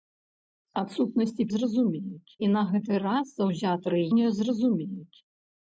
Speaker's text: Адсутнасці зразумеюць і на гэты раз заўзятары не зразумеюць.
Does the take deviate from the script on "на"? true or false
false